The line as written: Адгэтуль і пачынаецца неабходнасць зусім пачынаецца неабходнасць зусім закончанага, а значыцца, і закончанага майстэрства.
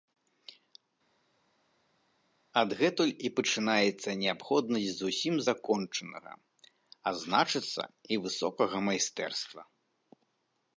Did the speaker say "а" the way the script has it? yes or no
yes